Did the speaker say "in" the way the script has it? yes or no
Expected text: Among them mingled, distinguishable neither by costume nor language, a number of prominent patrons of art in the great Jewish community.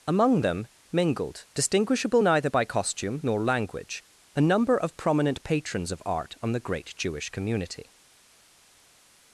no